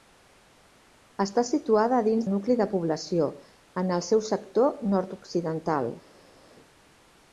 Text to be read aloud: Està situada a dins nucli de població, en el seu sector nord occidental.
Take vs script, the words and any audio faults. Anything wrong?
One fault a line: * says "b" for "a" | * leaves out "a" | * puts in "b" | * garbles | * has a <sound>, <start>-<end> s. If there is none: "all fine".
all fine